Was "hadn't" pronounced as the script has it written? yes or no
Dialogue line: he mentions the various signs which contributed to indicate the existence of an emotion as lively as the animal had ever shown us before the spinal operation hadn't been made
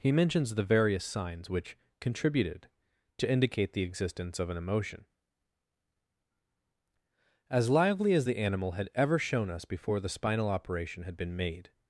no